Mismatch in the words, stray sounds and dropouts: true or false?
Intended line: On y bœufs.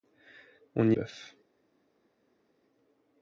false